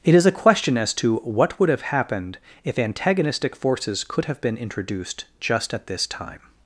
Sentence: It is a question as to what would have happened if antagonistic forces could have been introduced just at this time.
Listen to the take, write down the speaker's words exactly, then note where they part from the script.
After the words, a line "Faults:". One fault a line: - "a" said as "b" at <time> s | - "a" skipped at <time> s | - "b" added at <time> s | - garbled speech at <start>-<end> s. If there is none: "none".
It is a question as to what would have happened if antagonistic forces could have been introduced just at this time.
Faults:
none